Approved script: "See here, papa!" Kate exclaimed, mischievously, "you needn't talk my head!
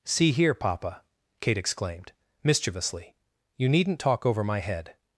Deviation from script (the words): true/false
true